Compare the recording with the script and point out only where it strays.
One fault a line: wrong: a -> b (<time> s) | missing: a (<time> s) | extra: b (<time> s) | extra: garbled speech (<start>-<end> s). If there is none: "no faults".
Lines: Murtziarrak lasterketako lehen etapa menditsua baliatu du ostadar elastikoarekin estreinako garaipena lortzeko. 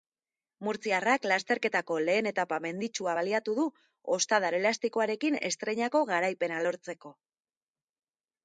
no faults